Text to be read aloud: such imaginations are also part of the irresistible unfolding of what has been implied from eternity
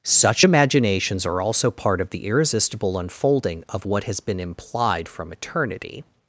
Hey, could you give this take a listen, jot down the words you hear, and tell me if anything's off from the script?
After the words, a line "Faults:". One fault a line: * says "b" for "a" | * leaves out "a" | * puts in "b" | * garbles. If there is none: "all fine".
such imaginations are also part of the irresistible unfolding of what has been implied from eternity
Faults:
all fine